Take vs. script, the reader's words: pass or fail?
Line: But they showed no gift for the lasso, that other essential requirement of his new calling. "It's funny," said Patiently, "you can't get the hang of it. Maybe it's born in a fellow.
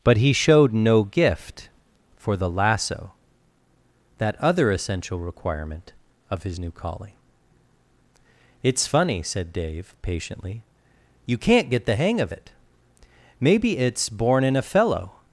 fail